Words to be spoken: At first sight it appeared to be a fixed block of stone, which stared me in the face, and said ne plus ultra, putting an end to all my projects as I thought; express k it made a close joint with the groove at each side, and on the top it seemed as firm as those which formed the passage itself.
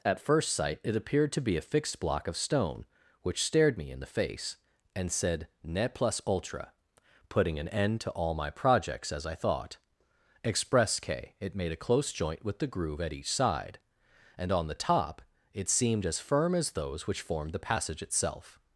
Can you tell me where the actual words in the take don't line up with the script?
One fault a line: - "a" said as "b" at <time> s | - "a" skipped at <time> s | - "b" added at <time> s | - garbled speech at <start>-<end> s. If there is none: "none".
none